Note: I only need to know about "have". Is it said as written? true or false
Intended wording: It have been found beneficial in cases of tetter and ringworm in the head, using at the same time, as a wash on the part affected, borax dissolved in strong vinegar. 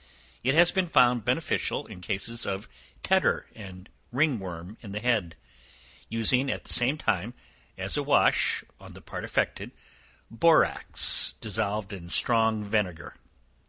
false